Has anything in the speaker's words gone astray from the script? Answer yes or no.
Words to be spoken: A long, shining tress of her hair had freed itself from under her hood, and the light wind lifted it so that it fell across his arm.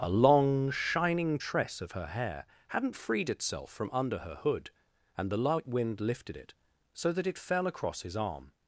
yes